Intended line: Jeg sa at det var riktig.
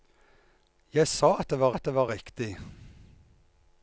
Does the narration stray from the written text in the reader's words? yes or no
yes